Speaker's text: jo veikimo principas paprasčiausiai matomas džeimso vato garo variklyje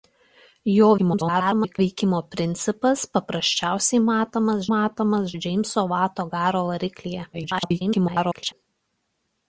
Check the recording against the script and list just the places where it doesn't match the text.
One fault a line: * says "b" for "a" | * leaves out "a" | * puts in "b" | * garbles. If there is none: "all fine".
* garbles
* puts in "matomas"
* garbles